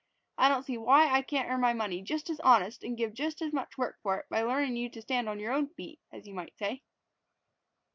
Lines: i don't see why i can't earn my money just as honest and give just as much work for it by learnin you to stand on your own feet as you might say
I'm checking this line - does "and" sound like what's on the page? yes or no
yes